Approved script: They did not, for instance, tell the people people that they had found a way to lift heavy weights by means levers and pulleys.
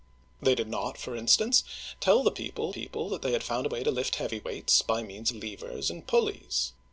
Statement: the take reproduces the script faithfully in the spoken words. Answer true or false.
true